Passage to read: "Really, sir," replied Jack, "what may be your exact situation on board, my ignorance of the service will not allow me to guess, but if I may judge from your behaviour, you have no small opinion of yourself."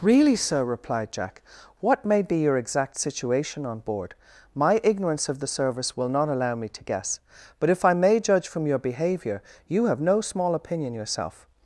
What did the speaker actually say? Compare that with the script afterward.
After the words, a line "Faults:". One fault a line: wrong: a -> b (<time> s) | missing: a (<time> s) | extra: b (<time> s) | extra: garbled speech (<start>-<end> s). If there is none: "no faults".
"Really, sir," replied Jack, "what may be your exact situation on board, my ignorance of the service will not allow me to guess, but if I may judge from your behaviour, you have no small opinion yourself."
Faults:
missing: of (10.9 s)